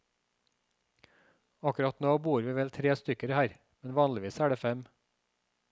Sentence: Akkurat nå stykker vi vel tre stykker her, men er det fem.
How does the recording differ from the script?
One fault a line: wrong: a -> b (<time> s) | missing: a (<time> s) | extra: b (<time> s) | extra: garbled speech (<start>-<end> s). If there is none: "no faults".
wrong: stykker -> bor (2.3 s)
extra: vanligvis (4.0 s)